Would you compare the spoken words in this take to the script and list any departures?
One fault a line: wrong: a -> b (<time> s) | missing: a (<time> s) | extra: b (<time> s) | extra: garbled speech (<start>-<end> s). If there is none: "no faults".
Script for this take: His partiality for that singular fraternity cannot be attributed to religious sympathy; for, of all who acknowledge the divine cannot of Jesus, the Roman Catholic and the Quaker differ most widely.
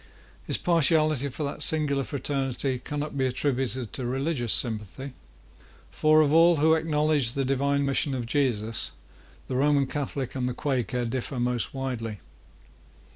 wrong: cannot -> mission (7.8 s)